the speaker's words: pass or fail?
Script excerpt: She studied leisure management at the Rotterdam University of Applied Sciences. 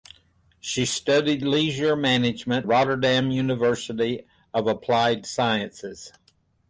fail